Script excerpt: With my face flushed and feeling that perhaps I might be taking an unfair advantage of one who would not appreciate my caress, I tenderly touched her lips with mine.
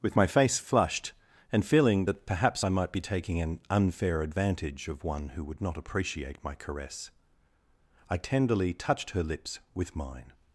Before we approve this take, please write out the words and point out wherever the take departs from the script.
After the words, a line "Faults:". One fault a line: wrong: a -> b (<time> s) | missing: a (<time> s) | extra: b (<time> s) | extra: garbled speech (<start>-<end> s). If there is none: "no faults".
With my face flushed and feeling that perhaps I might be taking an unfair advantage of one who would not appreciate my caress, I tenderly touched her lips with mine.
Faults:
no faults